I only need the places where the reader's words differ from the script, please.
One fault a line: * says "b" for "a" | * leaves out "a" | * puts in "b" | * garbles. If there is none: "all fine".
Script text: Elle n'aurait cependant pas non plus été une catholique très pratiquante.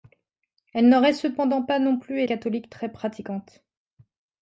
* leaves out "été une"